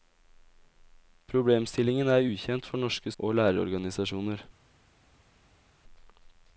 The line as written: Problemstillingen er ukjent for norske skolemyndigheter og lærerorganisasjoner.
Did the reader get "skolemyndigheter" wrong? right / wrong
wrong